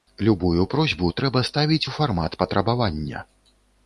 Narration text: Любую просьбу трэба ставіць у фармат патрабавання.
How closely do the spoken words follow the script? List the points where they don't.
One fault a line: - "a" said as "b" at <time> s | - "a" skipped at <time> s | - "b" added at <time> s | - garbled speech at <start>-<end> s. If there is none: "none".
none